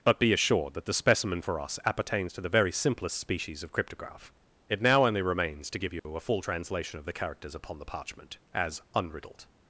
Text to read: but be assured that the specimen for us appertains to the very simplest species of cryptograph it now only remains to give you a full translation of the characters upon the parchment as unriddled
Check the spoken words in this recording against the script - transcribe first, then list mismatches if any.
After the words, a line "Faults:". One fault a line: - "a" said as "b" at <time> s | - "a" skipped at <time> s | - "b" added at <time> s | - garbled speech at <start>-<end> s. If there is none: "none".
but be assured that the specimen for us appertains to the very simplest species of cryptograph it now only remains to give you a full translation of the characters upon the parchment as unriddled
Faults:
none